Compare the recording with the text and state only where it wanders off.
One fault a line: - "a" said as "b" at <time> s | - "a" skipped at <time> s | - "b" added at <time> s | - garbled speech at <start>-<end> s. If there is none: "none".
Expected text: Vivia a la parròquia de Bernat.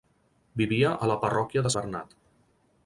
none